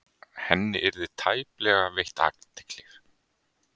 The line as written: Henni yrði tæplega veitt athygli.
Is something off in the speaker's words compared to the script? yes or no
no